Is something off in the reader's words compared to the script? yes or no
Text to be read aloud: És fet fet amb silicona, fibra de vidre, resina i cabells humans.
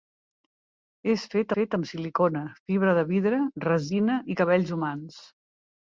no